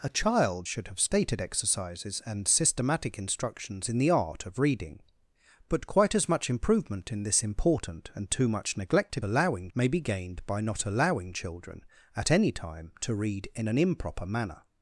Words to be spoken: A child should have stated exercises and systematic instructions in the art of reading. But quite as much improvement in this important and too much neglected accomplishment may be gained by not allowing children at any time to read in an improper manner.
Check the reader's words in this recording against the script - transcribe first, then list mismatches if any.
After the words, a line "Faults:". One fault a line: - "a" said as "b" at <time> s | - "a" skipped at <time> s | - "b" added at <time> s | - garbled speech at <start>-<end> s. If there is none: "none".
A child should have stated exercises and systematic instructions in the art of reading. But quite as much improvement in this important and too much neglected allowing may be gained by not allowing children at any time to read in an improper manner.
Faults:
- "accomplishment" said as "allowing" at 9.2 s